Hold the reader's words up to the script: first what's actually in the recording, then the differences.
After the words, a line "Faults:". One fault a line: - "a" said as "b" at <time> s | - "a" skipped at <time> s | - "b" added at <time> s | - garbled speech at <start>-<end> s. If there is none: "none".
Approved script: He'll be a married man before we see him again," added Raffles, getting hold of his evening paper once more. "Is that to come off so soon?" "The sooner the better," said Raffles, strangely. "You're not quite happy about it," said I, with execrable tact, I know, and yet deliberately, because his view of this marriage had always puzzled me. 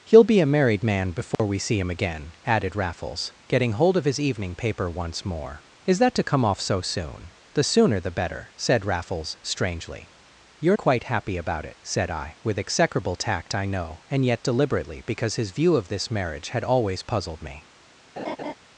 He'll be a married man before we see him again," added Raffles, getting hold of his evening paper once more. "Is that to come off so soon?" "The sooner the better," said Raffles, strangely. "You're quite happy about it," said I, with execrable tact, I know, and yet deliberately, because his view of this marriage had always puzzled me.
Faults:
- "not" skipped at 10.8 s